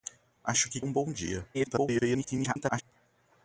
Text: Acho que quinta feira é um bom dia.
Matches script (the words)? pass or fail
fail